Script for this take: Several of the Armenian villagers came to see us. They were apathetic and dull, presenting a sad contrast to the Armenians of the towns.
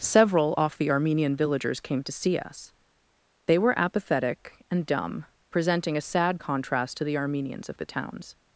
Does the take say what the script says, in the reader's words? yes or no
no